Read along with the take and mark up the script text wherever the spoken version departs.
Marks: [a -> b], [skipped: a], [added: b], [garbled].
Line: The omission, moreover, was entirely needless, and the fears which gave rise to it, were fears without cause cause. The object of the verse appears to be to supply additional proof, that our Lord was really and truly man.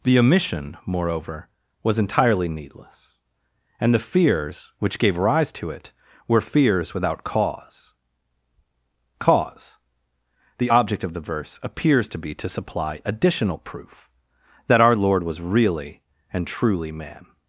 The omission, moreover, was entirely needless, and the fears which gave rise to it, were fears without cause cause. The object of the verse appears to be to supply additional proof, that our Lord was really and truly man.